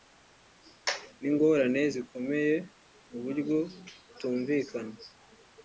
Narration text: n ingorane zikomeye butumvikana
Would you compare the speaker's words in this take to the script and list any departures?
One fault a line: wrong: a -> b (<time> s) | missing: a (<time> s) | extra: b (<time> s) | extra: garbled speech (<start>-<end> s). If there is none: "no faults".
extra: mu buryo (3.1 s)